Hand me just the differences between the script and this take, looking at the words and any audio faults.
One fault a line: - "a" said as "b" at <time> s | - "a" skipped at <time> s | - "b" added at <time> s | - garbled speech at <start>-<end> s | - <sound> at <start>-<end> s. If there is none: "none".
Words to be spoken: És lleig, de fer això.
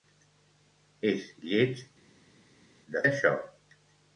- "fer" skipped at 3.0 s